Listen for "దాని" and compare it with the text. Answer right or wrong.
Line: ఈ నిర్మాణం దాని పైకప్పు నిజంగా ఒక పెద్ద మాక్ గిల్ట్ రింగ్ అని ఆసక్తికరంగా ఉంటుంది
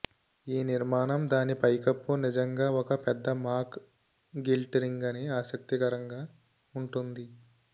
right